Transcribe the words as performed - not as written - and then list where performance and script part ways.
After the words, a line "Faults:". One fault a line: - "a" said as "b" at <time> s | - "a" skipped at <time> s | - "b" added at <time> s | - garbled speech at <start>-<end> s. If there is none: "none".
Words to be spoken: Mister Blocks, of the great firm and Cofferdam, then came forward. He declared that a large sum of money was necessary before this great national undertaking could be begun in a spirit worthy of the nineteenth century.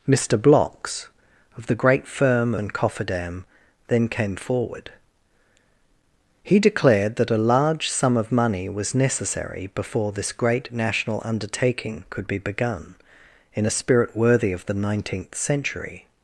Mister Blocks, of the great firm and Cofferdam, then came forward. He declared that a large sum of money was necessary before this great national undertaking could be begun in a spirit worthy of the nineteenth century.
Faults:
none